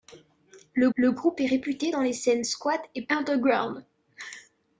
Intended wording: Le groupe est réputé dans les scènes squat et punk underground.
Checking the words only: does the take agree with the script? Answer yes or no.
no